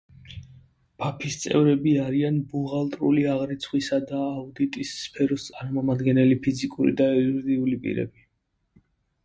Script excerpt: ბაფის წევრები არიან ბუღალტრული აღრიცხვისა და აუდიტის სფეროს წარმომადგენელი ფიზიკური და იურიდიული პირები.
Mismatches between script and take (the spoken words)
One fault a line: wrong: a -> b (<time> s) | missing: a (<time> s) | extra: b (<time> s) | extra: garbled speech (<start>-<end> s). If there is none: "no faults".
no faults